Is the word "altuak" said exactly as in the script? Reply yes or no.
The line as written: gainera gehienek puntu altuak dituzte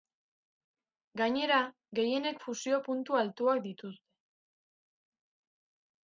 yes